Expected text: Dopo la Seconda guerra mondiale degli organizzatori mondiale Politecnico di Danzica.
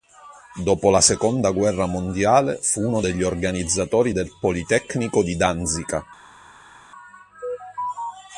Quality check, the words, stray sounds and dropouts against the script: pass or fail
fail